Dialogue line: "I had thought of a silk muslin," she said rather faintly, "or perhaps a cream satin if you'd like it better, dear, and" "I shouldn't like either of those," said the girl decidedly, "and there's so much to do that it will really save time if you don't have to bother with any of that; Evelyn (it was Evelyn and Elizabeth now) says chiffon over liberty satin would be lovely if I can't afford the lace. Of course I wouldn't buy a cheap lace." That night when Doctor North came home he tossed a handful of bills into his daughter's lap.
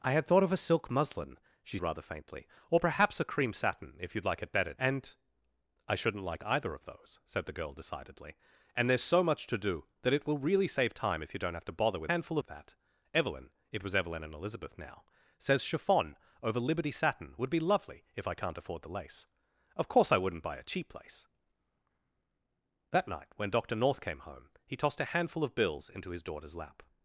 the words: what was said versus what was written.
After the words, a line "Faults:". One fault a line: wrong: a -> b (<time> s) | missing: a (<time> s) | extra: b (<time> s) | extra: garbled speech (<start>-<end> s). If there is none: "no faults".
"I had thought of a silk muslin," she rather faintly, "or perhaps a cream satin if you'd like it better, and" "I shouldn't like either of those," said the girl decidedly, "and there's so much to do that it will really save time if you don't have to bother with handful of that; Evelyn (it was Evelyn and Elizabeth now) says chiffon over liberty satin would be lovely if I can't afford the lace. Of course I wouldn't buy a cheap lace." That night when Doctor North came home he tossed a handful of bills into his daughter's lap.
Faults:
missing: said (1.8 s)
missing: dear (4.7 s)
wrong: any -> handful (12.1 s)